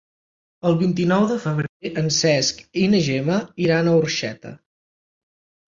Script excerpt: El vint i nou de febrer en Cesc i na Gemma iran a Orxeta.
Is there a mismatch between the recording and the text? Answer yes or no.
no